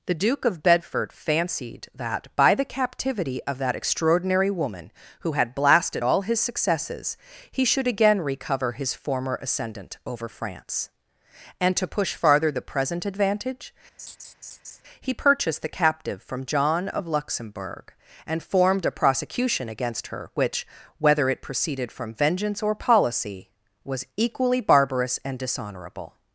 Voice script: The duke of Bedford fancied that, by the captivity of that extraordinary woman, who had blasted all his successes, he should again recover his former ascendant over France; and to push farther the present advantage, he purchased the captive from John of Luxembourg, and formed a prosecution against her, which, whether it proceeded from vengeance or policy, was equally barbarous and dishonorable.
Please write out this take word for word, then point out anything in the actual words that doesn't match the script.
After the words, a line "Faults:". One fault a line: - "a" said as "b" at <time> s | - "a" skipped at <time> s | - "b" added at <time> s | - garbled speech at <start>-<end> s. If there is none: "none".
The duke of Bedford fancied that, by the captivity of that extraordinary woman, who had blasted all his successes, he should again recover his former ascendant over France; and to push farther the present advantage, he purchased the captive from John of Luxembourg, and formed a prosecution against her, which, whether it proceeded from vengeance or policy, was equally barbarous and dishonorable.
Faults:
none